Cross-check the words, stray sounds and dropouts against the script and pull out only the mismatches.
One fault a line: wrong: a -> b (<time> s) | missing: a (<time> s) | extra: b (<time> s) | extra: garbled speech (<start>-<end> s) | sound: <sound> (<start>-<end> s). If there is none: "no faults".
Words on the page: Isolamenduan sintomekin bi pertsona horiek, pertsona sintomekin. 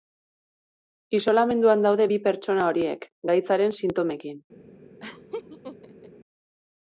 wrong: sintomekin -> daude (1.9 s)
wrong: pertsona -> gaitzaren (3.3 s)
sound: laugh (5.0-6.1 s)